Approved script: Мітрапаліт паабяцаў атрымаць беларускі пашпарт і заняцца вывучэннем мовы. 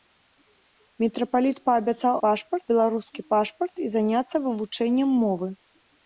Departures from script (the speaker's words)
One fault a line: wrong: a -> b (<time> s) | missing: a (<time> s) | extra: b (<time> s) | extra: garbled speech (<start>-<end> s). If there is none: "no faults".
wrong: атрымаць -> пашпарт (2.3 s)